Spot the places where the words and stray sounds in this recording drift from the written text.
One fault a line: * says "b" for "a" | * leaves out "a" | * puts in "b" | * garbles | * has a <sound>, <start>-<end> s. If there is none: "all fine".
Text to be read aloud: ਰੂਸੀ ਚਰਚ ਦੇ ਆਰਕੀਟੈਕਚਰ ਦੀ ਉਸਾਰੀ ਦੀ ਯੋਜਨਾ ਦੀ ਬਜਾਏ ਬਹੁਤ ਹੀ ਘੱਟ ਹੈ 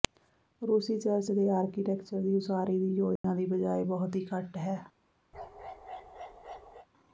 * has a dropout, 3.2-3.2 s
* has a bark, 5.3-6.9 s